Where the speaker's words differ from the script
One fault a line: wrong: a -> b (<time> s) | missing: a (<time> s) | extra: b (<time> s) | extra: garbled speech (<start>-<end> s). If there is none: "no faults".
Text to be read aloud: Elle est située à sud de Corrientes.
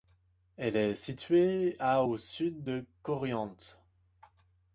extra: au (2.0 s)